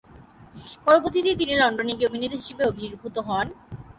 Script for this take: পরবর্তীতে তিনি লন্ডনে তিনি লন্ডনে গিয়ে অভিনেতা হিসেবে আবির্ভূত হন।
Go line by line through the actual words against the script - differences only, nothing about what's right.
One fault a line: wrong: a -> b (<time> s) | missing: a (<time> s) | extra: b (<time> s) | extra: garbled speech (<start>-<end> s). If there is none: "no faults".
missing: তিনি লন্ডনে (1.9 s)